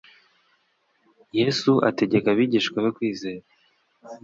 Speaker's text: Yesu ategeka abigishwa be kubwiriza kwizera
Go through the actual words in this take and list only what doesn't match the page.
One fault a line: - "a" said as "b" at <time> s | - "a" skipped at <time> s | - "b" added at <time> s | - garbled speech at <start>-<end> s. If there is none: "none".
- "kubwiriza" skipped at 2.9 s